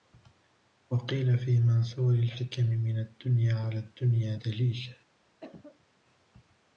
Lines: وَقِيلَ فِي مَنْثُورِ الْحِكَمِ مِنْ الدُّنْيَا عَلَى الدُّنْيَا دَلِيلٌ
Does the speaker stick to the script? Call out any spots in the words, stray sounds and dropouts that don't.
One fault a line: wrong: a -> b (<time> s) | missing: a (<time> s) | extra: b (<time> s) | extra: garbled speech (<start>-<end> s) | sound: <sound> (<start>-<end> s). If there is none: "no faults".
sound: cough (5.4-5.9 s)